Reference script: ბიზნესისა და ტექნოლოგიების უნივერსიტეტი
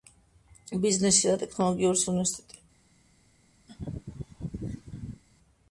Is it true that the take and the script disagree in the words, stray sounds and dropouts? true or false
true